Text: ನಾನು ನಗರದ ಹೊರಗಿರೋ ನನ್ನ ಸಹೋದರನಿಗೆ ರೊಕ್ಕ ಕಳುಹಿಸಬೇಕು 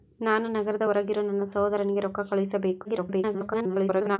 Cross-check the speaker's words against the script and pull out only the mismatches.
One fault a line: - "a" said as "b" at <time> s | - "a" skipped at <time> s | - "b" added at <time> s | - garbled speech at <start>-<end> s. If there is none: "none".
- garbled speech at 2.8-4.2 s